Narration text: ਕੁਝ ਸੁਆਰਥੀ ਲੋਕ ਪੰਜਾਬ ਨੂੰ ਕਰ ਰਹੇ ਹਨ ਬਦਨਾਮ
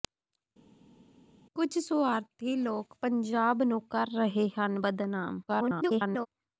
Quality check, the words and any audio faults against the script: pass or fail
fail